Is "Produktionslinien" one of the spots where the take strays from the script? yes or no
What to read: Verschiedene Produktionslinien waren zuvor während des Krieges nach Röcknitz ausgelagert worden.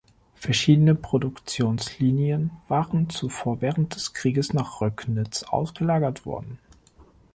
no